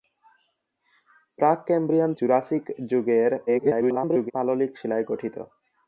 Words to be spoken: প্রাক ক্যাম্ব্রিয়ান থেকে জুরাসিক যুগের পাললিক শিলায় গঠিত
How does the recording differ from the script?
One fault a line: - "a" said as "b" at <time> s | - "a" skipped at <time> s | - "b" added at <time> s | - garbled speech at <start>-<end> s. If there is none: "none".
- "থেকে" skipped at 2.1 s
- garbled speech at 3.5-4.3 s